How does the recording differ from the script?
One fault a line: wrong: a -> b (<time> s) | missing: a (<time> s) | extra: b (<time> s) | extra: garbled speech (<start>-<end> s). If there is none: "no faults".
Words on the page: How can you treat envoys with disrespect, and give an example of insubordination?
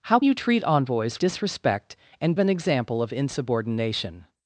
missing: can (0.2 s)
missing: with (1.2 s)
missing: give (2.3 s)